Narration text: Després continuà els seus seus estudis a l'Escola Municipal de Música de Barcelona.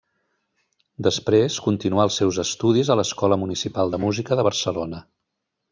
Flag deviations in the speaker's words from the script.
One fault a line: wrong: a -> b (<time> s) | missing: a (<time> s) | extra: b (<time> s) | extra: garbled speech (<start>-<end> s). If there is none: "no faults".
missing: seus (2.4 s)